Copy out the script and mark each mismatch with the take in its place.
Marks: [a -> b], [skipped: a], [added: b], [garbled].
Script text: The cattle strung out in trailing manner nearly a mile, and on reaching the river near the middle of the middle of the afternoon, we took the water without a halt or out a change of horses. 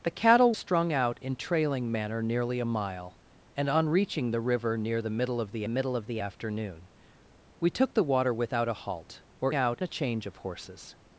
The cattle strung out in trailing manner nearly a mile, and on reaching the river near the middle of the middle of the afternoon, we took the water without a halt or out a change of horses.